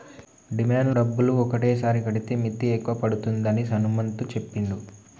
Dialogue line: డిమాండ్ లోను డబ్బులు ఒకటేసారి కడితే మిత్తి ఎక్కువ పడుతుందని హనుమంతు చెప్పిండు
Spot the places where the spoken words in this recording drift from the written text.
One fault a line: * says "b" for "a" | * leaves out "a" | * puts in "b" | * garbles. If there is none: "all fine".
* leaves out "లోను"